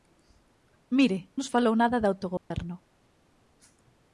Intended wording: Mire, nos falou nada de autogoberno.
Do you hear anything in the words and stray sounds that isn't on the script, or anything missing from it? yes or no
yes